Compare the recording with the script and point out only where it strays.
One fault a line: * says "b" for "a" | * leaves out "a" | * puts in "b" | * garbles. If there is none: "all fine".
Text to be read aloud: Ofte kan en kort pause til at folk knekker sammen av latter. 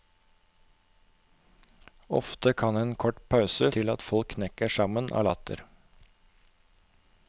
all fine